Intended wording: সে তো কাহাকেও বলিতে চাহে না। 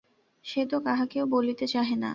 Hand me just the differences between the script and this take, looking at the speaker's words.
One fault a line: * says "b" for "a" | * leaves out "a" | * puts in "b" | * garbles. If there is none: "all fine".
all fine